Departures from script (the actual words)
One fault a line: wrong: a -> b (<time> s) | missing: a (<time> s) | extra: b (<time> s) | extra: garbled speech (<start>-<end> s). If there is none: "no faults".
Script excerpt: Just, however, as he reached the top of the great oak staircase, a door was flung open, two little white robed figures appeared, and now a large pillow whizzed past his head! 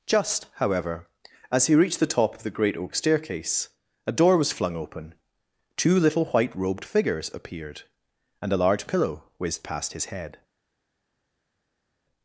missing: now (8.5 s)